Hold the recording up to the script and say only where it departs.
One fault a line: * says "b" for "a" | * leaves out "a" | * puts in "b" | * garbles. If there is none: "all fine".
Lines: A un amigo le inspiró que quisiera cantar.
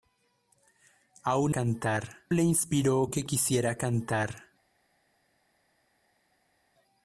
* says "cantar" for "amigo"